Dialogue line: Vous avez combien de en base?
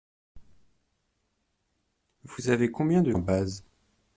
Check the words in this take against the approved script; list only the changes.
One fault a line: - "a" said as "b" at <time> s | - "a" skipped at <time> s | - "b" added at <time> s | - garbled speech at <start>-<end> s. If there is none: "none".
none